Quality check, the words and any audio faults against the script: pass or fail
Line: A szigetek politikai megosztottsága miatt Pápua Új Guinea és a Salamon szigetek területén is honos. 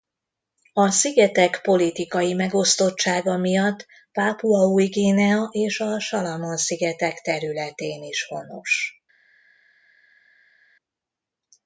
pass